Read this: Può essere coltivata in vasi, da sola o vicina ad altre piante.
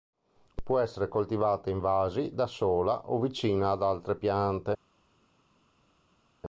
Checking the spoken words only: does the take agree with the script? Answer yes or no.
yes